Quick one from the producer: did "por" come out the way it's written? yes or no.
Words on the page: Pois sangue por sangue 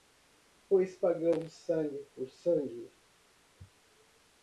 yes